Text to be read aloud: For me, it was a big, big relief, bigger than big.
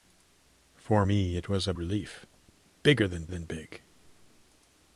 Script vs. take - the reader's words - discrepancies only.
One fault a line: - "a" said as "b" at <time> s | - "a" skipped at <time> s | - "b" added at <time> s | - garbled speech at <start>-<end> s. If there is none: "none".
- "big big" skipped at 1.7 s
- "than" added at 3.3 s